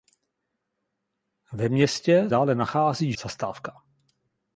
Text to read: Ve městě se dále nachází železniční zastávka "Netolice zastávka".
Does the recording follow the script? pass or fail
fail